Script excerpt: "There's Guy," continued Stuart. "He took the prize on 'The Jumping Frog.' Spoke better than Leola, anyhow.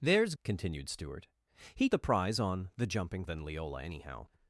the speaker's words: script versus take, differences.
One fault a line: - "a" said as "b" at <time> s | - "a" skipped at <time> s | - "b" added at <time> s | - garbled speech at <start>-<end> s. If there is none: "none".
- "Guy" skipped at 0.3 s
- "took" skipped at 1.9 s
- "Frog Spoke better" skipped at 3.2 s